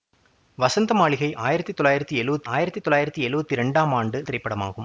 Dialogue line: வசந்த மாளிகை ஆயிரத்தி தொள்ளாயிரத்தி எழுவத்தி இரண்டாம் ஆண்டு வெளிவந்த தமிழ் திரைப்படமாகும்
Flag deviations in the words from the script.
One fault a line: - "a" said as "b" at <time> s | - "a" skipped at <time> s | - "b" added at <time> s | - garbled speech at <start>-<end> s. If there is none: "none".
- "ஆயிரத்தி தொள்ளாயிரத்தி எழுவத்தி" added at 2.4 s
- "வெளிவந்த தமிழ்" skipped at 4.2 s